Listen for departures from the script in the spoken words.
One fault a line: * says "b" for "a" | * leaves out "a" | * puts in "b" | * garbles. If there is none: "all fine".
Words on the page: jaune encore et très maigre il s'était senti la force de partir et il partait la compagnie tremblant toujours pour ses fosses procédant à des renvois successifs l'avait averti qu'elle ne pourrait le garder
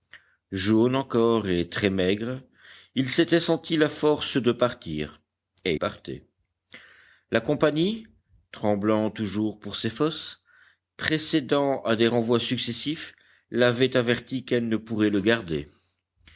* leaves out "il"